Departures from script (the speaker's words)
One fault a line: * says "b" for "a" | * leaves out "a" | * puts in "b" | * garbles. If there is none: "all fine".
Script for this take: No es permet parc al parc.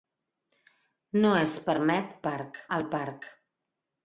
all fine